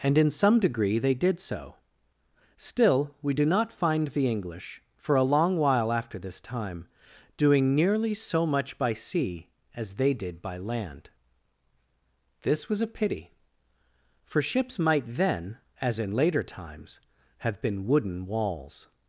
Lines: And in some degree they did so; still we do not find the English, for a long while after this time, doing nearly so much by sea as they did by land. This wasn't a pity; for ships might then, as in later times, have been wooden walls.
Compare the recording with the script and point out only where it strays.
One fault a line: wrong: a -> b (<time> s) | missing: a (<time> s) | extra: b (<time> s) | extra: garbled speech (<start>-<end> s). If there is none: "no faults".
wrong: wasn't -> was (12.7 s)